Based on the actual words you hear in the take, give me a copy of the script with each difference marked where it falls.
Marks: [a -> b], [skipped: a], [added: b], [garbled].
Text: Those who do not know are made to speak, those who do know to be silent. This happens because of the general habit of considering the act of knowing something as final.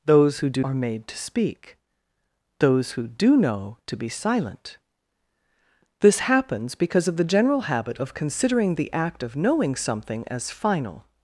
Those who do [skipped: not know] are made to speak, those who do know to be silent. This happens because of the general habit of considering the act of knowing something as final.